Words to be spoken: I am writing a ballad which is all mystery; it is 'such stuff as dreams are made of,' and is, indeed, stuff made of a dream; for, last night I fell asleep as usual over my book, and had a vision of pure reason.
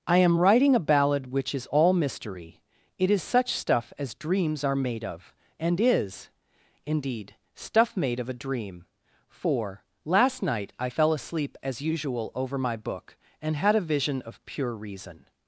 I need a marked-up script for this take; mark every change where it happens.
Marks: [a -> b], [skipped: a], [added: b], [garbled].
I am writing a ballad which is all mystery; it is 'such stuff as dreams are made of,' and is, indeed, stuff made of a dream; for, last night I fell asleep as usual over my book, and had a vision of pure reason.